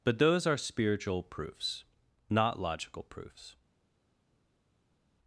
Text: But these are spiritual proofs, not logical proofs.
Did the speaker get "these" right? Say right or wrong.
wrong